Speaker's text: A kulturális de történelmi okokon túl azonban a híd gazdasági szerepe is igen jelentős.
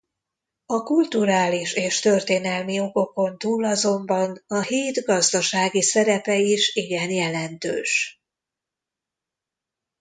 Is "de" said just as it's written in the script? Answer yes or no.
no